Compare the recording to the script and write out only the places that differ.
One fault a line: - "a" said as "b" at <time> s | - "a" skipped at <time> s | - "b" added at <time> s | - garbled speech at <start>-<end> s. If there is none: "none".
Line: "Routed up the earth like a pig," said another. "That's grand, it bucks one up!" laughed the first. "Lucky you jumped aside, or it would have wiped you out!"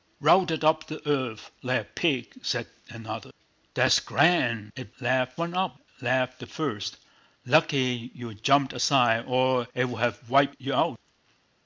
- "bucks" said as "laughed" at 5.0 s